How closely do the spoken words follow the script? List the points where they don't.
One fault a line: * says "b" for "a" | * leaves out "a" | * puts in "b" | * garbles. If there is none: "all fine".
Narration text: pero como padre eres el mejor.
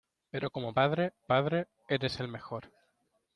* puts in "padre"